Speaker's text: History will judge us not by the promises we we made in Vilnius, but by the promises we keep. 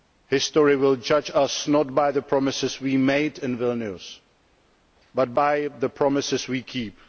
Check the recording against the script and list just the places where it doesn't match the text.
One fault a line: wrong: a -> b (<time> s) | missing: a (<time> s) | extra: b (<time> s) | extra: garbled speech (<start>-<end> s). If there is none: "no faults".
missing: we (3.0 s)